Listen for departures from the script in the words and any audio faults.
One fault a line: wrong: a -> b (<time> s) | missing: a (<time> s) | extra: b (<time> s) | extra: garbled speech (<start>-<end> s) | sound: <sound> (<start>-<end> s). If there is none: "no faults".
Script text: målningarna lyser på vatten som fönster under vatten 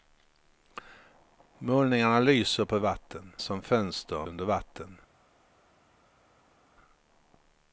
no faults